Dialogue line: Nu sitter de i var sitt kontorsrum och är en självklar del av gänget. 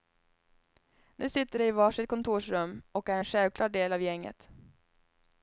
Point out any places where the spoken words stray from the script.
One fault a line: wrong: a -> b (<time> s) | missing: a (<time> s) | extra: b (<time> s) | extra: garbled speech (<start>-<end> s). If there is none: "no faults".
no faults